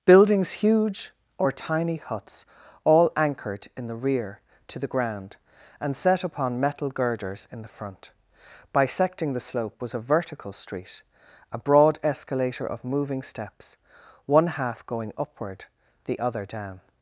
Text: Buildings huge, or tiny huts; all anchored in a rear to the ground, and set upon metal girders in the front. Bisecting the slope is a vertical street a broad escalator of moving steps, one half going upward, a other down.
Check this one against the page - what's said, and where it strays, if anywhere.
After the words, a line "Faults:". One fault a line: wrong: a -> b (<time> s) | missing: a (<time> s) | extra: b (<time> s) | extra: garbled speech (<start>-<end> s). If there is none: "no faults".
Buildings huge, or tiny huts; all anchored in the rear to the ground, and set upon metal girders in the front. Bisecting the slope was a vertical street a broad escalator of moving steps, one half going upward, the other down.
Faults:
wrong: a -> the (3.9 s)
wrong: is -> was (9.8 s)
wrong: a -> the (16.0 s)